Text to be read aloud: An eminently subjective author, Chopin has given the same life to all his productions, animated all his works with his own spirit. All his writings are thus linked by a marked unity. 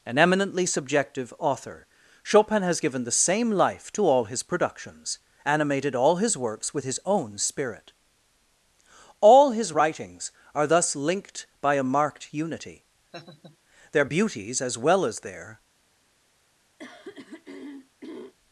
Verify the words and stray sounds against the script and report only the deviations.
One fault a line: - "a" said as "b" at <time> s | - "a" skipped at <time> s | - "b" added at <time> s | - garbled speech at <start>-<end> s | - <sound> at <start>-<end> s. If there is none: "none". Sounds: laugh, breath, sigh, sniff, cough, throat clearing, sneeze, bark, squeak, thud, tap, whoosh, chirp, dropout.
- laugh at 13.1-13.6 s
- "Their beauties as well as their" added at 13.9 s
- throat clearing at 16.8-18.3 s